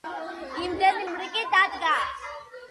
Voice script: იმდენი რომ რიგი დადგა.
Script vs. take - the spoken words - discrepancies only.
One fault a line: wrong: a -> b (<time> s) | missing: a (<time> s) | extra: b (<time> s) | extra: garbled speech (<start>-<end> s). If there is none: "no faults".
no faults